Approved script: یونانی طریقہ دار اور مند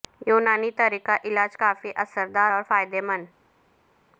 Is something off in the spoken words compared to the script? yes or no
yes